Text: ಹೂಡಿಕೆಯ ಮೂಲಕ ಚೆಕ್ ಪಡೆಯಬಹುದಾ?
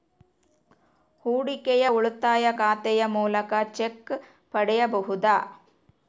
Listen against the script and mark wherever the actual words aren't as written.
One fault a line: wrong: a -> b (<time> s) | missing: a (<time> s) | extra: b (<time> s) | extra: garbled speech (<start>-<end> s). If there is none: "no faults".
extra: ಉಳಿತಾಯ ಖಾತೆಯ (1.9 s)